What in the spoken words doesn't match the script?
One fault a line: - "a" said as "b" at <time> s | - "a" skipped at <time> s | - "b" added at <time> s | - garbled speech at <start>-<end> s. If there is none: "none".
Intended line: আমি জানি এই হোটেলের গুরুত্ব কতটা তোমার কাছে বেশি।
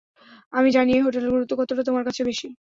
none